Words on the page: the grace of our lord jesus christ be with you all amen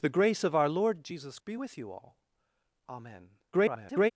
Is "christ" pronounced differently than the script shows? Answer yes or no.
yes